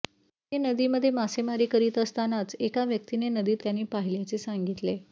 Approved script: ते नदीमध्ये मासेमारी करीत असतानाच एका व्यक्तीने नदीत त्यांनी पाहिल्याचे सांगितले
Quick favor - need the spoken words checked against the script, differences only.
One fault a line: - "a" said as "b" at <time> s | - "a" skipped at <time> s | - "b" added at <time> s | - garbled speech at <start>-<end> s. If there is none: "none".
none